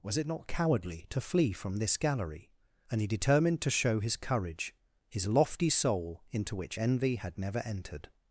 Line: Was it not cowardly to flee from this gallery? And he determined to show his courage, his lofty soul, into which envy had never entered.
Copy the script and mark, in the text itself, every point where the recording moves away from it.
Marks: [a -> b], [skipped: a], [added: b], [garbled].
Was it not cowardly to flee from this gallery? And he determined to show his courage, his lofty soul, into which envy had never entered.